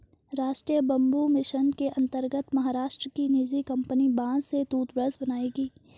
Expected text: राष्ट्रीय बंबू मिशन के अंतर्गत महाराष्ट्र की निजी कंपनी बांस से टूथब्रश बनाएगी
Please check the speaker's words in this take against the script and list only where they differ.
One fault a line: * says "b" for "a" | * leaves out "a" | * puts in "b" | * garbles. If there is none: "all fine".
all fine